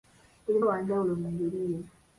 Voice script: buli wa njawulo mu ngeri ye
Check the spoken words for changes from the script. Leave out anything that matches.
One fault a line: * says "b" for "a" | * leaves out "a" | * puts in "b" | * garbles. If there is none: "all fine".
all fine